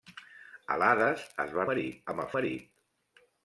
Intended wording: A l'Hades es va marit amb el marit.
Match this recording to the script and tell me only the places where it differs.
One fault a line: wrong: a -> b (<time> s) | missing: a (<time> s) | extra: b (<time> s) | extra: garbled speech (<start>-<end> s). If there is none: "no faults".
no faults